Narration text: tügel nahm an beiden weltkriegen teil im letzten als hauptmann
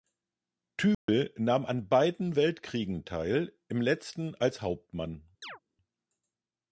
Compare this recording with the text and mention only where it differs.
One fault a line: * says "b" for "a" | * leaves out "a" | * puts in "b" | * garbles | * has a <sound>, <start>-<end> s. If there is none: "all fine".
* has a dropout, 0.9-1.1 s
* has a chirp, 5.4-5.6 s